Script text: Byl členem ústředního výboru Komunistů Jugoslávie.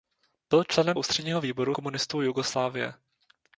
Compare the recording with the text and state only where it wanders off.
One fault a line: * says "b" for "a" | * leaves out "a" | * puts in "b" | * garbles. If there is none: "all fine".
all fine